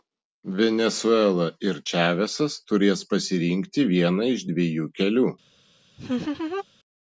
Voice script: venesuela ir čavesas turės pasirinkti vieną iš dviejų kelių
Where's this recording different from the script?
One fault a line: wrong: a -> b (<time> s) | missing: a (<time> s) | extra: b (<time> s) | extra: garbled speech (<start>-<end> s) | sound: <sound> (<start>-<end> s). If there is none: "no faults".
sound: laugh (6.0-6.6 s)